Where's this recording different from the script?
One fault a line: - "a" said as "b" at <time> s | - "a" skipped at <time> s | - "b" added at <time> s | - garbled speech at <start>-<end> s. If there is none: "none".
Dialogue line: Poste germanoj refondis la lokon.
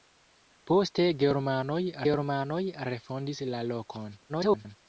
- "germanoj" added at 2.1 s
- garbled speech at 4.3-4.8 s